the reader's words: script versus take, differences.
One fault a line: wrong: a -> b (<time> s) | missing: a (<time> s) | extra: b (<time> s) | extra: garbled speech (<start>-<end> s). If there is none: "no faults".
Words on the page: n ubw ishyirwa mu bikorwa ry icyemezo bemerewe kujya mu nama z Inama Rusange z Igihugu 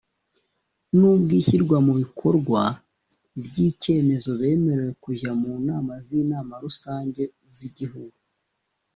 no faults